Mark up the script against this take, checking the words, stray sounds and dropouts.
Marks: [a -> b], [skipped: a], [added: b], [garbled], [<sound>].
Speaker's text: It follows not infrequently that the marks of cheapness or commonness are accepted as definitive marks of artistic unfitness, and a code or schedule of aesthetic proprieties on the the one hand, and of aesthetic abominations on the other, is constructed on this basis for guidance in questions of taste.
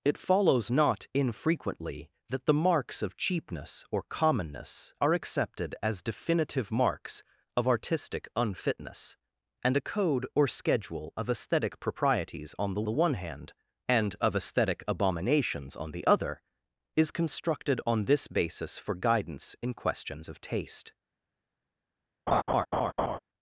It follows not infrequently that the marks of cheapness or commonness are accepted as definitive marks of artistic unfitness, and a code or schedule of aesthetic proprieties on the the one hand, and of aesthetic abominations on the other, is constructed on this basis for guidance in questions of taste. [laugh]